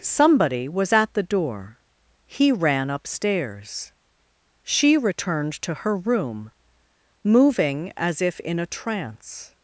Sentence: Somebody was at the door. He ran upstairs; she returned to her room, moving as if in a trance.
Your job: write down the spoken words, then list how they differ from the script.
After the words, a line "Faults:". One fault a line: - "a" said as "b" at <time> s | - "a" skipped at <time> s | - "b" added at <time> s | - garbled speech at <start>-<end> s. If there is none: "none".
Somebody was at the door. He ran upstairs; she returned to her room, moving as if in a trance.
Faults:
none